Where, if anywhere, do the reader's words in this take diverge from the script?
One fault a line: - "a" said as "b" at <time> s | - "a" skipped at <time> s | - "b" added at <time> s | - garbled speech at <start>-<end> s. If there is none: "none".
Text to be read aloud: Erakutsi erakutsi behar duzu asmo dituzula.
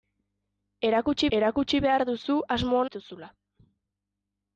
none